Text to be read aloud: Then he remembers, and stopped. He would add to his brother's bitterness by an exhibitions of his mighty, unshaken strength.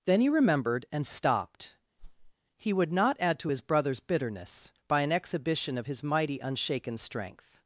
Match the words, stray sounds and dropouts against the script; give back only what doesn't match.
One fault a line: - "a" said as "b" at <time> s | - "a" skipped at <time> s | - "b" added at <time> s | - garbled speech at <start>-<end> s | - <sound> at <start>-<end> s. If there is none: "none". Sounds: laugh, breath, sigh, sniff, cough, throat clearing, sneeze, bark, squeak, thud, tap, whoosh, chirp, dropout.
- "remembers" said as "remembered" at 0.3 s
- whoosh at 2.0-2.3 s
- "not" added at 2.9 s
- "exhibitions" said as "exhibition" at 5.1 s